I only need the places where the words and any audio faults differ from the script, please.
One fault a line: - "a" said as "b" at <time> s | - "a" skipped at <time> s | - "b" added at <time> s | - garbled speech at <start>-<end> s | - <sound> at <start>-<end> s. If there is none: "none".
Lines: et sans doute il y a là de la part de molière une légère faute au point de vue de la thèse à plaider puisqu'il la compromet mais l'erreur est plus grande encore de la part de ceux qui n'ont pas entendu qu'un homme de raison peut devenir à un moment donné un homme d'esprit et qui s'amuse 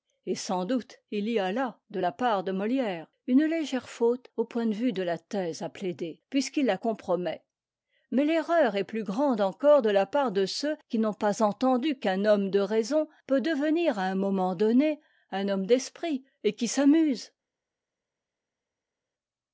none